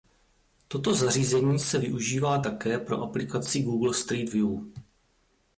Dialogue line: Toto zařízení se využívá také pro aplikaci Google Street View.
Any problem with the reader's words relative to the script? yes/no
no